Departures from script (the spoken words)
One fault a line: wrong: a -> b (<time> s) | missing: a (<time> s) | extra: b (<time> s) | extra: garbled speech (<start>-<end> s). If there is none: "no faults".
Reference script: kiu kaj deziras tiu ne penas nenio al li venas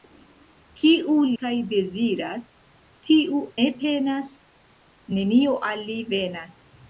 no faults